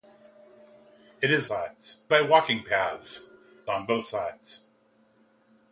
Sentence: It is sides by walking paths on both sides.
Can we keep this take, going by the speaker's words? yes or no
yes